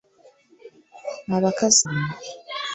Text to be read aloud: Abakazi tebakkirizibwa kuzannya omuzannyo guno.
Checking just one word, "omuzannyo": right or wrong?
wrong